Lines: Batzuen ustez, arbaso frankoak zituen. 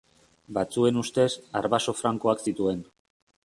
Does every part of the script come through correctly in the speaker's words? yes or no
yes